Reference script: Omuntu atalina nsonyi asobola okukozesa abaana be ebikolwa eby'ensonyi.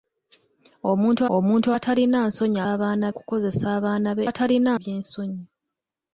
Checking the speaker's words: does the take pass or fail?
fail